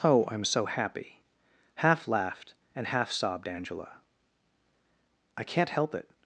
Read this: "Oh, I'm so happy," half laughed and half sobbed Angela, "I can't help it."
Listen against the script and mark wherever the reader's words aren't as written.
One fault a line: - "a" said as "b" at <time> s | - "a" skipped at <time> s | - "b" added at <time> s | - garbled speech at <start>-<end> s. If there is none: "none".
none